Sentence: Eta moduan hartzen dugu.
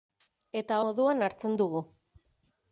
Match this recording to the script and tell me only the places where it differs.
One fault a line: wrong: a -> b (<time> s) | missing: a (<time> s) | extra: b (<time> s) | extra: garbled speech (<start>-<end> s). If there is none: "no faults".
no faults